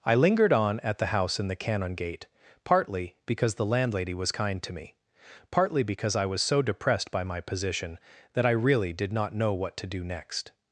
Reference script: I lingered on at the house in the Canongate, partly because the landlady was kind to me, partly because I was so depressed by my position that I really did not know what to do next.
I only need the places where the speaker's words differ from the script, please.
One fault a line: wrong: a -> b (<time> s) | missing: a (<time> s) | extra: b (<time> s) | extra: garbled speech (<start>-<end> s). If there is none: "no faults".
no faults